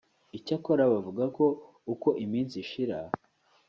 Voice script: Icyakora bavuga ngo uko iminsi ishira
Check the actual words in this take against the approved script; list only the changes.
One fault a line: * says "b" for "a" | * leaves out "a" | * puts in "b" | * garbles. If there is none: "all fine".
* says "ko" for "ngo"